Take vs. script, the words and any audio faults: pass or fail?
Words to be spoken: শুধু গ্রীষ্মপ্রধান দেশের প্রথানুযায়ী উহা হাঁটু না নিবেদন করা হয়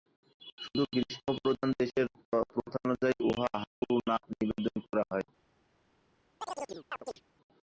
fail